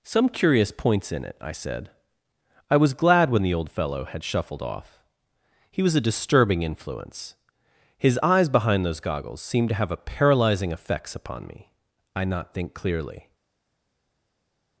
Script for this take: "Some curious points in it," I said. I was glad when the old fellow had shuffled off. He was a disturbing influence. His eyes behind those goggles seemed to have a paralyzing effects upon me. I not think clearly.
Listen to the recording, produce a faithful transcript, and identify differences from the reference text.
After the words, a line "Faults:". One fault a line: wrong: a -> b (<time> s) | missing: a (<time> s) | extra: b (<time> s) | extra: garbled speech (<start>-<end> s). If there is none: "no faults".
"Some curious points in it," I said. I was glad when the old fellow had shuffled off. He was a disturbing influence. His eyes behind those goggles seemed to have a paralyzing effects upon me. I not think clearly.
Faults:
no faults